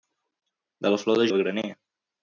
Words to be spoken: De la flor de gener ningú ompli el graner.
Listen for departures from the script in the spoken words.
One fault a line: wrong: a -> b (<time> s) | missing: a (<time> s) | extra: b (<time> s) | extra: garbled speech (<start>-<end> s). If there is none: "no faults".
missing: gener ningú ompli (1.3 s)